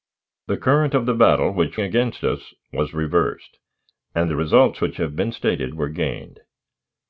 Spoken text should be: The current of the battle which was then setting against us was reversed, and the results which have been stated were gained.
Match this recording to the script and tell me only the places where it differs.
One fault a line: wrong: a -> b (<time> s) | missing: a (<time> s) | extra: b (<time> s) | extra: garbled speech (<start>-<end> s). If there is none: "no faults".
missing: was then setting (1.8 s)